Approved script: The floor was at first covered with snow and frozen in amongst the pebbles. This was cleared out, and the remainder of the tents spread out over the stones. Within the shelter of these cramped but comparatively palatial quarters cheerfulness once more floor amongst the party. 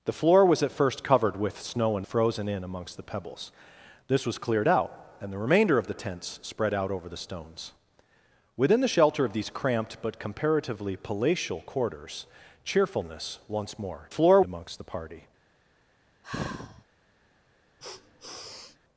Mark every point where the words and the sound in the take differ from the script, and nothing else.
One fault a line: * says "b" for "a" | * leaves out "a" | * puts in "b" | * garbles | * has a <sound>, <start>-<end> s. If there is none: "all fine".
* has a sigh, 16.2-16.8 s
* has a sniff, 17.8-18.8 s